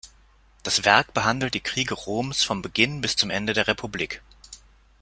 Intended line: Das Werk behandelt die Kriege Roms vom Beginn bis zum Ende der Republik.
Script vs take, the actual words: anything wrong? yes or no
no